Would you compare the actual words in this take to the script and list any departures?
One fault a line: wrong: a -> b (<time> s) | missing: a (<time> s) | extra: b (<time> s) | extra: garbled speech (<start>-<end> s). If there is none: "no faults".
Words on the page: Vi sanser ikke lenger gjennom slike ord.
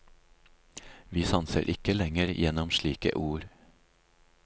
no faults